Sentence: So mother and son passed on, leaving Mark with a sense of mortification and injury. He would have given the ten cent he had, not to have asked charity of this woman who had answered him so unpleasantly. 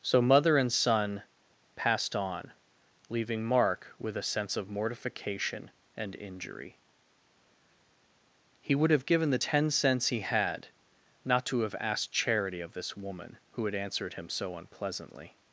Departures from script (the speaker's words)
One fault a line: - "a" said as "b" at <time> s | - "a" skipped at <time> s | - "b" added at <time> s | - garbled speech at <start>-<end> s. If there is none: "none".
- "cent" said as "cents" at 9.7 s